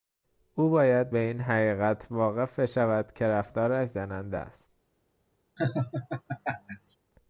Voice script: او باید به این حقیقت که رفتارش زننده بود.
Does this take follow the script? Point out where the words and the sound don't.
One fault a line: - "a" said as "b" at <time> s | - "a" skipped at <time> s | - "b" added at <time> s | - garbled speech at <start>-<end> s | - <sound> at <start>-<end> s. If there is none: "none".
- "واقف بشود" added at 2.1 s
- "بود" said as "است" at 4.3 s
- laugh at 5.6-7.0 s